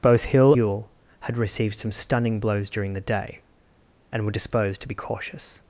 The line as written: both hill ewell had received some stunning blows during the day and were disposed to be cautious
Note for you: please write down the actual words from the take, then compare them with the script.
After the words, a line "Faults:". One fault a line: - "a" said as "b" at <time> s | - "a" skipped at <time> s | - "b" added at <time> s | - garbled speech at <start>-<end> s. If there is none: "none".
both hill ewell had received some stunning blows during the day and were disposed to be cautious
Faults:
none